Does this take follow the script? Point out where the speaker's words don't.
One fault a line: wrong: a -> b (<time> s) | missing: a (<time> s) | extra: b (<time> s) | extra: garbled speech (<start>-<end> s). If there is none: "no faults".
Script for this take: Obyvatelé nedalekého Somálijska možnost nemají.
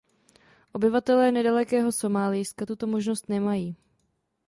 extra: tuto (2.6 s)